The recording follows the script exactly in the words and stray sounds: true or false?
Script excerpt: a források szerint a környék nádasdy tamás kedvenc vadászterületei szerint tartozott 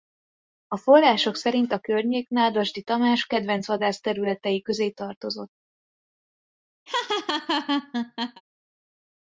false